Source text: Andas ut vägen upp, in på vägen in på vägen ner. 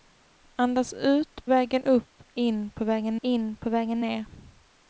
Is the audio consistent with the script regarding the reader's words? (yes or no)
yes